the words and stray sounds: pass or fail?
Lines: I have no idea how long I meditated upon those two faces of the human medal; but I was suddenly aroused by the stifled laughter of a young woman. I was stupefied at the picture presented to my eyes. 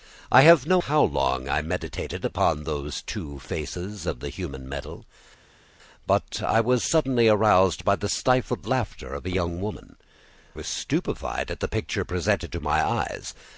fail